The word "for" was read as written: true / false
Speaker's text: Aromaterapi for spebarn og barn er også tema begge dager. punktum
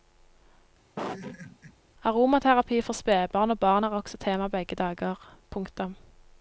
true